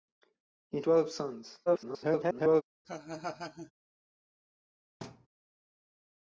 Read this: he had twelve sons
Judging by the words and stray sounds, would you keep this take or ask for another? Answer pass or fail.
fail